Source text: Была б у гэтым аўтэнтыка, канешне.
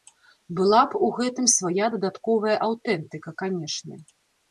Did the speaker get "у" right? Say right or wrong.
right